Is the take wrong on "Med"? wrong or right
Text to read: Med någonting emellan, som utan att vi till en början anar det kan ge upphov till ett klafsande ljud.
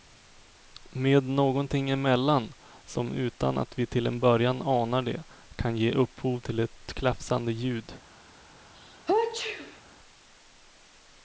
right